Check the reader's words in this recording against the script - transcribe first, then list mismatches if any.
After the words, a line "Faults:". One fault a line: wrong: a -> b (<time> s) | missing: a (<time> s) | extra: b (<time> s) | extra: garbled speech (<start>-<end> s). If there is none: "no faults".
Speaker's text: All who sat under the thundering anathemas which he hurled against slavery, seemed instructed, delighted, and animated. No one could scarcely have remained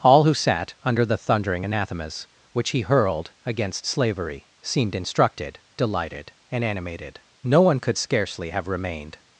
All who sat under the thundering anathemas which he hurled against slavery, seemed instructed, delighted, and animated. No one could scarcely have remained
Faults:
no faults